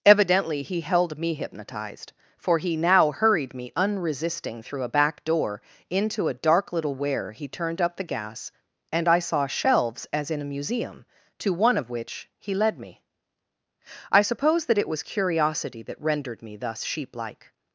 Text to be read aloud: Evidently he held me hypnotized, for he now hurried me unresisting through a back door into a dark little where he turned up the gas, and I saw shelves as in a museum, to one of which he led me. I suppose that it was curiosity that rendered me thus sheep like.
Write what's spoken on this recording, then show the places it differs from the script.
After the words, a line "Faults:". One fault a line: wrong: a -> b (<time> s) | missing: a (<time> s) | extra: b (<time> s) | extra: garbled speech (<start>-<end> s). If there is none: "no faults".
Evidently he held me hypnotized, for he now hurried me unresisting through a back door into a dark little where he turned up the gas, and I saw shelves as in a museum, to one of which he led me. I suppose that it was curiosity that rendered me thus sheep like.
Faults:
no faults